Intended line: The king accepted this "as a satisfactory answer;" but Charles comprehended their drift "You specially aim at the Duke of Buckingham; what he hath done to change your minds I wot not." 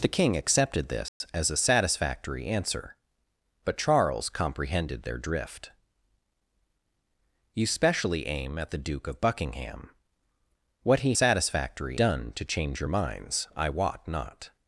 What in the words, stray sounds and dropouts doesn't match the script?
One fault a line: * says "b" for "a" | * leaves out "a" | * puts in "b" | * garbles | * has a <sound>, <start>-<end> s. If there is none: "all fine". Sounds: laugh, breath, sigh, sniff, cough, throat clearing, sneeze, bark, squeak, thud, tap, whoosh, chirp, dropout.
* has a dropout, 1.1-1.2 s
* says "satisfactory" for "hath"